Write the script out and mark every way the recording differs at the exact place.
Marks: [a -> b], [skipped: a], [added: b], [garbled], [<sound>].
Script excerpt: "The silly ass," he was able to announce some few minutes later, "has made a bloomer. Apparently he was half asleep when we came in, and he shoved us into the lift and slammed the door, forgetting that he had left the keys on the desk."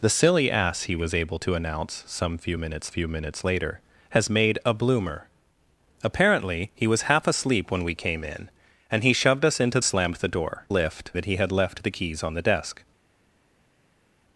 "The silly ass," he was able to announce some few minutes [added: few minutes] later, "has made a bloomer. Apparently he was half asleep when we came in, and he shoved us into [skipped: the lift and] slammed the door, [forgetting -> lift] that he had left the keys on the desk."